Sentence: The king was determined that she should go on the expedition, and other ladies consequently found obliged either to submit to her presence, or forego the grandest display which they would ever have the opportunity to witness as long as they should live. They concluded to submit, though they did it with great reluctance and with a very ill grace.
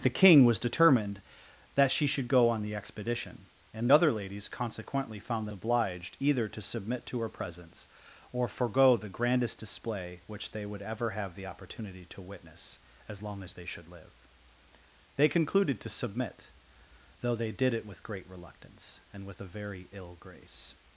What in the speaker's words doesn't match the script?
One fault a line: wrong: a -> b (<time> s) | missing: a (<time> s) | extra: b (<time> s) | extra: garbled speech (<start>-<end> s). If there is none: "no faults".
no faults